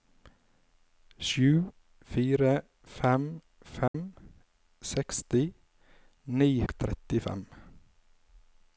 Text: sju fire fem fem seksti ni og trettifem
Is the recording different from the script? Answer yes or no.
no